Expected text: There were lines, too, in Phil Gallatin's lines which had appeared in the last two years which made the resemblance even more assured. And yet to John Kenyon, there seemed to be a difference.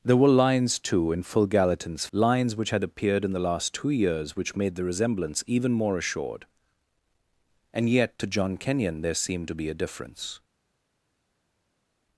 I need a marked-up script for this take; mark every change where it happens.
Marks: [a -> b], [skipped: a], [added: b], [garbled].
There were lines, too, in Phil Gallatin's lines which had appeared in the last two years which made the resemblance even more assured. And yet to John Kenyon, there seemed to be a difference.